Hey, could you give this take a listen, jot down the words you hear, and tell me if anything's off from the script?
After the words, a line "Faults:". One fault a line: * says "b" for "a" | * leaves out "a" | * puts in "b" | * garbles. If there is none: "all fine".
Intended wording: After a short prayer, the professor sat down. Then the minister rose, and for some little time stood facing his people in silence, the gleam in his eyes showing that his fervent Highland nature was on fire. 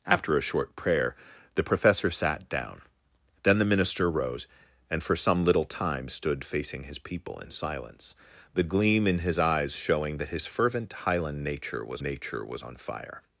After a short prayer, the professor sat down. Then the minister rose, and for some little time stood facing his people in silence, the gleam in his eyes showing that his fervent Highland nature was nature was on fire.
Faults:
* puts in "nature was"